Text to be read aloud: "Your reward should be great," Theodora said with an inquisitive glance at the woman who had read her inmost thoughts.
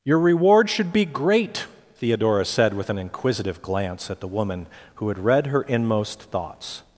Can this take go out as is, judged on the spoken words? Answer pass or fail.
pass